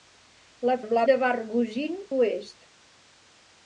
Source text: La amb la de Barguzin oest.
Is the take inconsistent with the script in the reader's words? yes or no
no